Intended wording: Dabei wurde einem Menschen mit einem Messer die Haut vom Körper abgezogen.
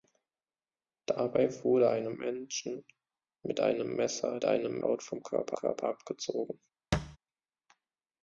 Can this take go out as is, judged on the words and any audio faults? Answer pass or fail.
fail